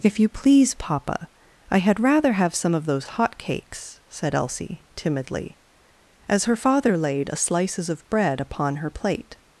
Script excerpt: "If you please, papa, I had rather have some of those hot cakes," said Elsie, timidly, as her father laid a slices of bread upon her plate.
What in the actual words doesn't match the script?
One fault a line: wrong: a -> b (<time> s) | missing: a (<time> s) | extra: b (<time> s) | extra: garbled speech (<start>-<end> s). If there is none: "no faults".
no faults